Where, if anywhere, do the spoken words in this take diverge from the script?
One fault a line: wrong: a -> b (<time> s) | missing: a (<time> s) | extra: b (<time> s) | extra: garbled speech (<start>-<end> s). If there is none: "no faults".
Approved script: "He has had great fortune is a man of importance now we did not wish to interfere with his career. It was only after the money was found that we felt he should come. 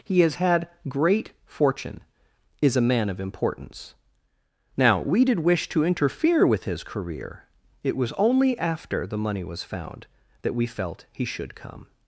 missing: not (5.4 s)